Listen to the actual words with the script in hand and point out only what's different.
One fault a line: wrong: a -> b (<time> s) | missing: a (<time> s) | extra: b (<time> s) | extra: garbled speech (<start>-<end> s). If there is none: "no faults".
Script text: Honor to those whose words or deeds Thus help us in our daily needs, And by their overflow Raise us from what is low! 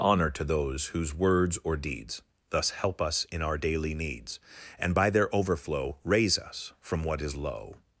no faults